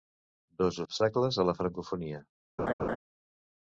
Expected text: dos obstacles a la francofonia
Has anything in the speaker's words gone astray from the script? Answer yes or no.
no